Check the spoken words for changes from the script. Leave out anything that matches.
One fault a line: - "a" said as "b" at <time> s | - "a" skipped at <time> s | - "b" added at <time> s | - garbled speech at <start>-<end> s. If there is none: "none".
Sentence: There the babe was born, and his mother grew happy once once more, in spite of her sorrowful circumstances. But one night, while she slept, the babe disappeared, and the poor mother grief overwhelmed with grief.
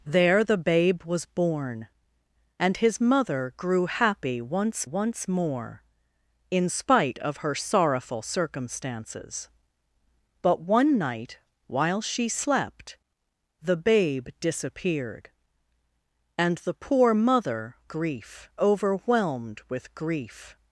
none